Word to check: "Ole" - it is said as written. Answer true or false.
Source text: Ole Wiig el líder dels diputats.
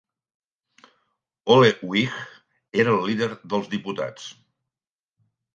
true